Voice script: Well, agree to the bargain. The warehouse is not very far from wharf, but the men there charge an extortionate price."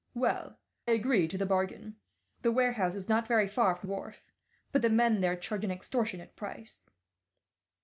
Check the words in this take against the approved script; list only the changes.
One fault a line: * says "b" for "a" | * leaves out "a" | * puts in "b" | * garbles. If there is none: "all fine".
all fine